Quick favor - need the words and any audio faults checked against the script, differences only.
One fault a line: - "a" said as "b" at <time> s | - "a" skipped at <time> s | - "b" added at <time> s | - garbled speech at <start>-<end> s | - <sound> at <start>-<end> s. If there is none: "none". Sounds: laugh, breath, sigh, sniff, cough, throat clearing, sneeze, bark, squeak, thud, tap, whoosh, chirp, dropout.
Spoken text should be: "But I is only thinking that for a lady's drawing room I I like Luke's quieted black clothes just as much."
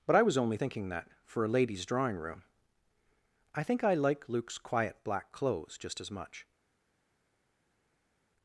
- "is" said as "was" at 0.2 s
- "think" added at 3.6 s
- "quieted" said as "quiet" at 4.6 s